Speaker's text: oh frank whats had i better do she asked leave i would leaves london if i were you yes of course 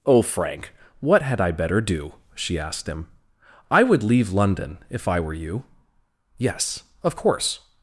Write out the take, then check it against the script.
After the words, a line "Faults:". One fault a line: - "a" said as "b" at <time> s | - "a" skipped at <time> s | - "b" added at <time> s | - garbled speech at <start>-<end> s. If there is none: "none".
oh frank what had i better do she asked him i would leave london if i were you yes of course
Faults:
- "whats" said as "what" at 1.0 s
- "leave" said as "him" at 2.9 s
- "leaves" said as "leave" at 4.0 s